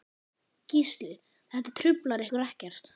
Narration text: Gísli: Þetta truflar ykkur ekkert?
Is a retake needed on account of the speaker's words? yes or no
no